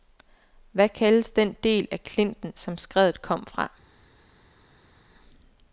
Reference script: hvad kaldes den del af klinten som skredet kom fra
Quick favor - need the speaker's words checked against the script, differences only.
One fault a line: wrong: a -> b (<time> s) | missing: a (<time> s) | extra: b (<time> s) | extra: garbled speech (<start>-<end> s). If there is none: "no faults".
no faults